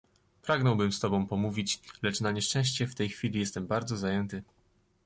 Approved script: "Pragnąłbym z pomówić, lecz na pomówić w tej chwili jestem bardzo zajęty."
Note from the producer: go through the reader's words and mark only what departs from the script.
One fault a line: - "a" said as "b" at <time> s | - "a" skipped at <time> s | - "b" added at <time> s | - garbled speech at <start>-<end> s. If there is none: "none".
- "tobą" added at 1.0 s
- "pomówić" said as "nieszczęście" at 2.3 s